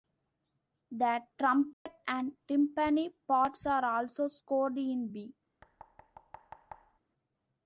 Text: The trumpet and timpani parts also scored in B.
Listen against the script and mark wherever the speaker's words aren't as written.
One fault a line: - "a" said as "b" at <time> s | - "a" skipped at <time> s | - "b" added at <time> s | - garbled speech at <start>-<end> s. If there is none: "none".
- "are" added at 3.7 s